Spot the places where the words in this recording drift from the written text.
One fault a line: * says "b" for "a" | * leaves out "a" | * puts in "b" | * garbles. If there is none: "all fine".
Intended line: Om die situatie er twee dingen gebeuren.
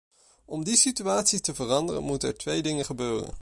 * puts in "te veranderen moeten"